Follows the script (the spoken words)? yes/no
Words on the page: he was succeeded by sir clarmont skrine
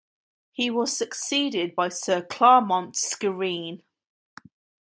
yes